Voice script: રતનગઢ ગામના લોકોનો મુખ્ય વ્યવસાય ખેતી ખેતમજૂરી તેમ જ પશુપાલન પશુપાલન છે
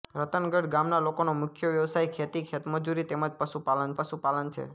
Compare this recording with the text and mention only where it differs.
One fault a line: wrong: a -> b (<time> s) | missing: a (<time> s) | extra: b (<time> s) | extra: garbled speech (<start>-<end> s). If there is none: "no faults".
no faults